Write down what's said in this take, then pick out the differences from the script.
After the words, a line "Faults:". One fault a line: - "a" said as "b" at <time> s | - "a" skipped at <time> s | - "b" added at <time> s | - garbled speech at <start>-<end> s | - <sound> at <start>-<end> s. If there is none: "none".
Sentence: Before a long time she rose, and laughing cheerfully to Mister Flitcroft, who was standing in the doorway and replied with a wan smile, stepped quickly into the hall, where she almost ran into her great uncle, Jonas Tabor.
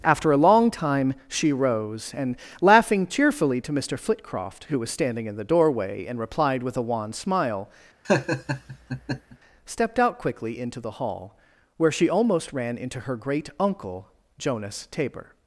After a long time she rose, and laughing cheerfully to Mister Flitcroft, who was standing in the doorway and replied with a wan smile, stepped out quickly into the hall, where she almost ran into her great uncle, Jonas Tabor.
Faults:
- "Before" said as "After" at 0.0 s
- laugh at 8.0-9.4 s
- "out" added at 10.0 s